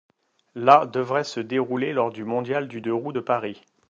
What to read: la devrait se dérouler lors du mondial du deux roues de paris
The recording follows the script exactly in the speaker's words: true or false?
true